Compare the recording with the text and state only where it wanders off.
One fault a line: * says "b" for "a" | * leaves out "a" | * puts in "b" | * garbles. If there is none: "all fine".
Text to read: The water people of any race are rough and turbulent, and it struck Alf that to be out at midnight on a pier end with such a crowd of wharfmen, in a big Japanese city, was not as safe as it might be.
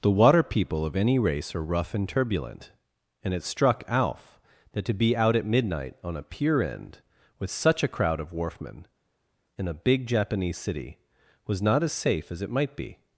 all fine